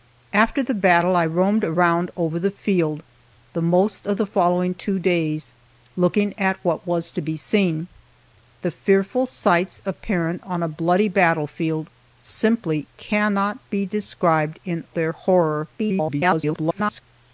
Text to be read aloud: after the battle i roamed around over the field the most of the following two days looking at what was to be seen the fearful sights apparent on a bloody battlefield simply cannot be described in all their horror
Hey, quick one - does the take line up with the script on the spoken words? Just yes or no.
no